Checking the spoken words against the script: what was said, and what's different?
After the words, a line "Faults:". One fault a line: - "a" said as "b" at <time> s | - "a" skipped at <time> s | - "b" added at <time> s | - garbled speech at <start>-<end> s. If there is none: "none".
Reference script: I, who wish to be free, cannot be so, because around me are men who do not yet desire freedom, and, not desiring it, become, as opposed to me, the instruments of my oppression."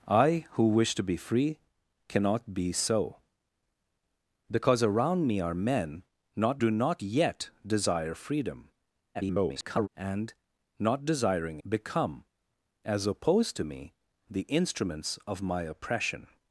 I, who wish to be free, cannot be so, because around me are men not do not yet desire freedom, [garbled] and, not desiring become, as opposed to me, the instruments of my oppression."
Faults:
- "who" said as "not" at 6.3 s
- garbled speech at 9.1-9.9 s
- "it" skipped at 11.6 s